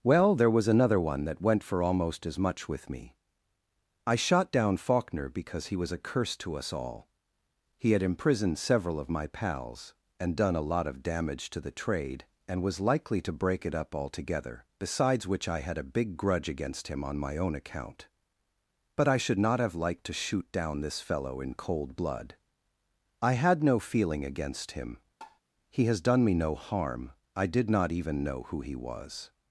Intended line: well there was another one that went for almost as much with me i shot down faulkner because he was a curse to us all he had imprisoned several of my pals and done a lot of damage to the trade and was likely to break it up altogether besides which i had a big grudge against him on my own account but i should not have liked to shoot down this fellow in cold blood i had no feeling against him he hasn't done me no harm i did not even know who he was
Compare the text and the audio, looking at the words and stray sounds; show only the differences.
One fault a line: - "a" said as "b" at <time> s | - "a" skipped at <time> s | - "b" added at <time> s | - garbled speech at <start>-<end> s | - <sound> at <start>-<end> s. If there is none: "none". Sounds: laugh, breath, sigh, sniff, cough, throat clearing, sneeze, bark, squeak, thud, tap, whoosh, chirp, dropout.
- tap at 25.2-25.4 s
- "hasn't" said as "has" at 25.9 s